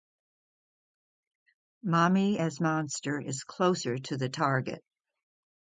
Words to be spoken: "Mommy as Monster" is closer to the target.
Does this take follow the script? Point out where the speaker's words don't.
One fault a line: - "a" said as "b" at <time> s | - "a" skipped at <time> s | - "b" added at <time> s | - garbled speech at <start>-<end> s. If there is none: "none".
none